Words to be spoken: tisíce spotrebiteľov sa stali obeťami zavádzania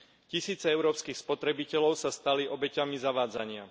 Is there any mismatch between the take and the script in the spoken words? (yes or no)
yes